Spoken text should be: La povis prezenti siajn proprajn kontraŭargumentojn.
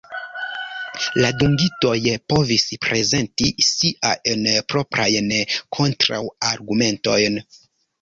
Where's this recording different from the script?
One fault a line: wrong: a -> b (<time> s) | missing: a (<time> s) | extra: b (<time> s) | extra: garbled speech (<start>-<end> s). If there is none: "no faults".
extra: dungitoj (1.4 s)